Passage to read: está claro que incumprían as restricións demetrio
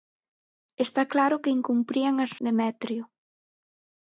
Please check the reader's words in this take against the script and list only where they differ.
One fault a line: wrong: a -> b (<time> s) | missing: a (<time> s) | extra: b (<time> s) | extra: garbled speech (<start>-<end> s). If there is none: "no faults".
missing: restricións (2.3 s)